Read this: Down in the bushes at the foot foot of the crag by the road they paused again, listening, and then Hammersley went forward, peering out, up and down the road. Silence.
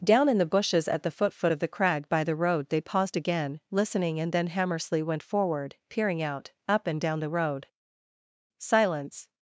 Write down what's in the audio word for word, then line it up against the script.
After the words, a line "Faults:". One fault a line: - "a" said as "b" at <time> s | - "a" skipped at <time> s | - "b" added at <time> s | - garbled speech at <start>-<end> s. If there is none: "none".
Down in the bushes at the foot foot of the crag by the road they paused again, listening, and then Hammersley went forward, peering out, up and down the road. Silence.
Faults:
none